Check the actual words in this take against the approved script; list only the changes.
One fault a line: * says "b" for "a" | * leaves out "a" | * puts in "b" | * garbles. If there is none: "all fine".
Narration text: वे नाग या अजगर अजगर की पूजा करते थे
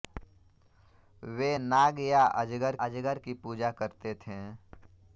all fine